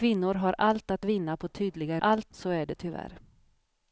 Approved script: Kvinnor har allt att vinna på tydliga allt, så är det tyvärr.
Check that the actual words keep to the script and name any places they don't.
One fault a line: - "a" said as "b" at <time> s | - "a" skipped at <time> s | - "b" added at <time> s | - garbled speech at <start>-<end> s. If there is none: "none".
none